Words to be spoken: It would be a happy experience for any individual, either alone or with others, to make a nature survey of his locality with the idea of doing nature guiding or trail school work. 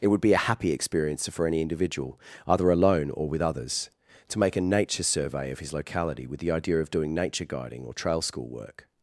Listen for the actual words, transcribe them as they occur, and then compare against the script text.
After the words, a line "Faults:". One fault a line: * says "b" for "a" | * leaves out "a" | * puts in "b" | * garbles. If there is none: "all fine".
It would be a happy experience for any individual, either alone or with others, to make a nature survey of his locality with the idea of doing nature guiding or trail school work.
Faults:
all fine